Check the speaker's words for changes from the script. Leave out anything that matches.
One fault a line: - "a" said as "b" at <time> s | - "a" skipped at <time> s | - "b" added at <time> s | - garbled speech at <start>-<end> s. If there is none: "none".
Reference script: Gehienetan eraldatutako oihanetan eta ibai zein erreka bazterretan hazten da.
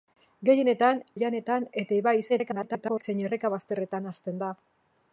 - "eraldatutako" skipped at 1.0 s
- garbled speech at 2.3-3.0 s